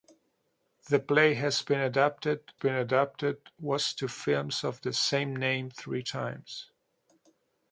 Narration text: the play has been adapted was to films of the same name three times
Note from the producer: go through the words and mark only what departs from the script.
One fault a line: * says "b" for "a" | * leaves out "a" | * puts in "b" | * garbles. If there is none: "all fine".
* puts in "been adapted"